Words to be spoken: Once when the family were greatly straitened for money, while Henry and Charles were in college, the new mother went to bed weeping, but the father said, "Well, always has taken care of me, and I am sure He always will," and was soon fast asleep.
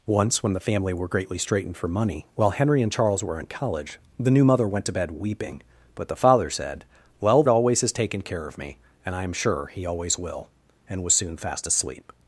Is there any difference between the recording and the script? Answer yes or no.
no